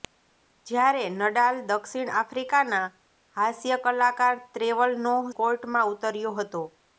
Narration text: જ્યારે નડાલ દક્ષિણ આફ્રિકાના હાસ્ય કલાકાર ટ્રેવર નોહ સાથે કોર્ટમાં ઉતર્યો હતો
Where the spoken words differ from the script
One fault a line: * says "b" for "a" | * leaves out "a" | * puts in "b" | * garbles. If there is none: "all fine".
* leaves out "સાથે"